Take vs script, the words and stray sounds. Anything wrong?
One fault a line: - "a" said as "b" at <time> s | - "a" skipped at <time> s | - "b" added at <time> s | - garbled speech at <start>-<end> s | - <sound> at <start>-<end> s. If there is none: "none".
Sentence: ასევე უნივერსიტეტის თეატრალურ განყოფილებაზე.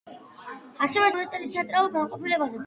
none